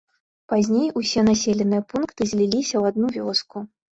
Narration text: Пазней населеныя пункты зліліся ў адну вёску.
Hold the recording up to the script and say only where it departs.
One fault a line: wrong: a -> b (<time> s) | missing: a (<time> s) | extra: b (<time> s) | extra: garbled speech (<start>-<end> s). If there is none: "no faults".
extra: усе (1.0 s)